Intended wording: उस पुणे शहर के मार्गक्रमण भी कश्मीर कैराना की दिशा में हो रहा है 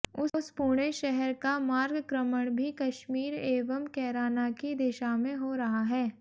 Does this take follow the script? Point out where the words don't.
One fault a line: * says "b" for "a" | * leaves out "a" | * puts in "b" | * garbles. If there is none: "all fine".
* says "का" for "के"
* puts in "एवं"